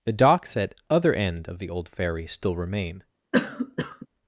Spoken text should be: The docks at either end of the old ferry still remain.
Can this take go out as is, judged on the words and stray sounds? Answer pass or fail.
fail